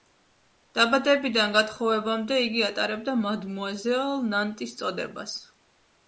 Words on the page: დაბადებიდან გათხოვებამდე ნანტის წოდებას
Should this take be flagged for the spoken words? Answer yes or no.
yes